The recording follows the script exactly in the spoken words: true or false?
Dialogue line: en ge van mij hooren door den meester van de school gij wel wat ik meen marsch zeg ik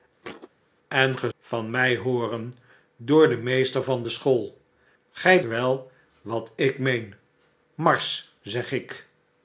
true